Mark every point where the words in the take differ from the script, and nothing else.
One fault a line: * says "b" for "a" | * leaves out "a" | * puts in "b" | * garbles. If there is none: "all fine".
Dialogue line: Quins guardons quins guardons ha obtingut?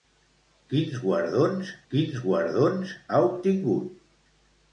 all fine